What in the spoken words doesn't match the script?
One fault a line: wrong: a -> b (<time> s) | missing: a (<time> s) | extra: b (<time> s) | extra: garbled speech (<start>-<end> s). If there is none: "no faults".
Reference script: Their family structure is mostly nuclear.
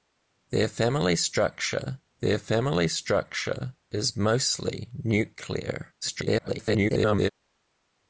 extra: their family structure (2.2 s)
extra: garbled speech (6.0-7.3 s)